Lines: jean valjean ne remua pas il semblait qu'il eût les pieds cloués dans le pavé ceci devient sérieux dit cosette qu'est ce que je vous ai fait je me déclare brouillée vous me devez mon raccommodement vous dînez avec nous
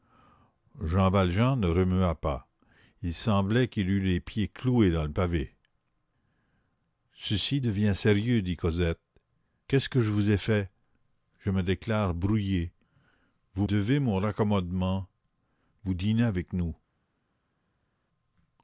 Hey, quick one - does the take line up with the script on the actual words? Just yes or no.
no